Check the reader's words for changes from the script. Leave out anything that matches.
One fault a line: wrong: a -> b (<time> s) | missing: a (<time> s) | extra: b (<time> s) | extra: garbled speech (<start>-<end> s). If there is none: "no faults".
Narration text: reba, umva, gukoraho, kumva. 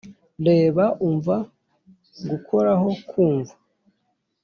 no faults